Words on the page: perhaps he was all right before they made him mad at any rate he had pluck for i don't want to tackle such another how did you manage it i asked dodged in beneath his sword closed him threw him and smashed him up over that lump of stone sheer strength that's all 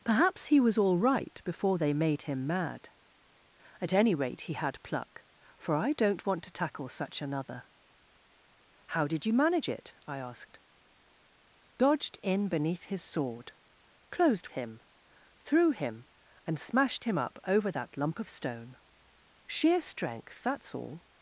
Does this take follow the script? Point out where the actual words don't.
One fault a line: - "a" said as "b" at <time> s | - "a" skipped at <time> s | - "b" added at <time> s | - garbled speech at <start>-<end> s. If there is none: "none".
none